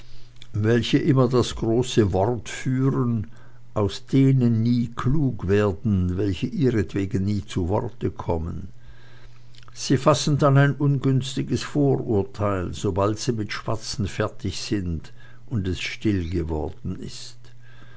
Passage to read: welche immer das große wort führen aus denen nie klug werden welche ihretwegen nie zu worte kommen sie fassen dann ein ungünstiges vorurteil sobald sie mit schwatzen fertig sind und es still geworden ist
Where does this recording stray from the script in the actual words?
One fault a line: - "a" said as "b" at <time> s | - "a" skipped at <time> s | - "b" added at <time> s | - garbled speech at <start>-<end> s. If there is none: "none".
none